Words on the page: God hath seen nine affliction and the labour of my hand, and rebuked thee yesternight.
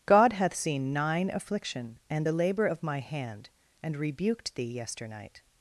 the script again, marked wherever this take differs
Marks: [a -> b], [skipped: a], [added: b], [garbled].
God hath seen nine affliction and the labour of my hand, and rebuked thee yesternight.